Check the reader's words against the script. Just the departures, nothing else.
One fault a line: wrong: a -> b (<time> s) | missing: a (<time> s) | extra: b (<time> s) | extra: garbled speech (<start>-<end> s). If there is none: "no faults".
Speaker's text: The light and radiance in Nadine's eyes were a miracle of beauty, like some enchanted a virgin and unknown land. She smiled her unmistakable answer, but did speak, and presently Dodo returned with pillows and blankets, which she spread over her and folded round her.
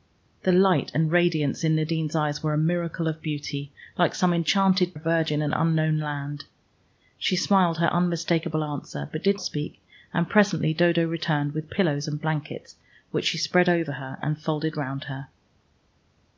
no faults